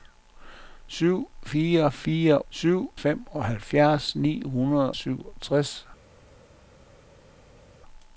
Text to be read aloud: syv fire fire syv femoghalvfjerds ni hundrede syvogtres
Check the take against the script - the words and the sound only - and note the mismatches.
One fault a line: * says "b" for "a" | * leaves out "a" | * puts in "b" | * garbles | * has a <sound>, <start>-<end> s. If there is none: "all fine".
all fine